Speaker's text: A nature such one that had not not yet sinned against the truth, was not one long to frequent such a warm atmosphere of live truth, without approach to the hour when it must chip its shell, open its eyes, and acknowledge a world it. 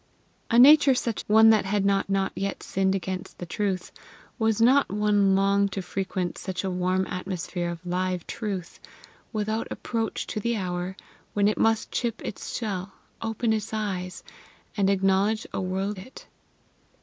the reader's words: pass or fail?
pass